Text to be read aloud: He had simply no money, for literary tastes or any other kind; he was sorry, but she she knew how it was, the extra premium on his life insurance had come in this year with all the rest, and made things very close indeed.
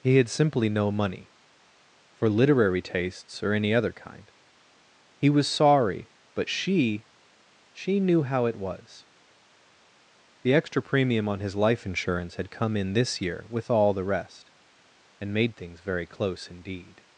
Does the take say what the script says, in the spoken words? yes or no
yes